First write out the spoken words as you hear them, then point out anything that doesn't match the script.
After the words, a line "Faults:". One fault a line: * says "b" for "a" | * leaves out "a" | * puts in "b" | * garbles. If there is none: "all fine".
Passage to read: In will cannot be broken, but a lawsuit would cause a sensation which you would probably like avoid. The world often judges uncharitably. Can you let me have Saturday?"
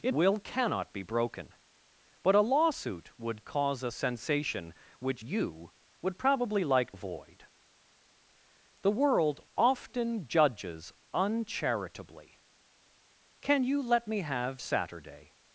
In will cannot be broken, but a lawsuit would cause a sensation which you would probably like avoid. The world often judges uncharitably. Can you let me have Saturday?"
Faults:
all fine